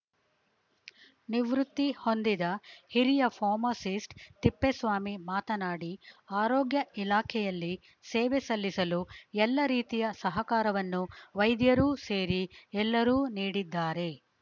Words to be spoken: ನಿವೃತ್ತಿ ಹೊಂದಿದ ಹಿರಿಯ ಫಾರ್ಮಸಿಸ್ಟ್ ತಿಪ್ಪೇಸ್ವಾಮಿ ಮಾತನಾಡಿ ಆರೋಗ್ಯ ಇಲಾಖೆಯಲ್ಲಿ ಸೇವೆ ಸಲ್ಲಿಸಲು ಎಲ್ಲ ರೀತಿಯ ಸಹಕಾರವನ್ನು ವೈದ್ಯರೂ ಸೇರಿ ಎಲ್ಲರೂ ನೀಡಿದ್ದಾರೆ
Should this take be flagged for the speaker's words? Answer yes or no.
no